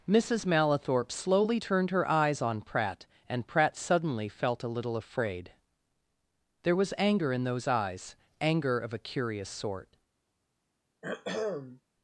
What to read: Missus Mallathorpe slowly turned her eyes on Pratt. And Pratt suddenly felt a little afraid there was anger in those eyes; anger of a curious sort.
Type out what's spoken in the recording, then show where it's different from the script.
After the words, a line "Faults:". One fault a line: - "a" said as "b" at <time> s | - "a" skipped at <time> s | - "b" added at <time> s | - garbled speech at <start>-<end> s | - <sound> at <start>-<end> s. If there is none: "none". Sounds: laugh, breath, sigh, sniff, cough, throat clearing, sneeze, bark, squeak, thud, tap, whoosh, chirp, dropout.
Missus Mallathorpe slowly turned her eyes on Pratt. And Pratt suddenly felt a little afraid there was anger in those eyes; anger of a curious sort.
Faults:
- throat clearing at 11.0-11.8 s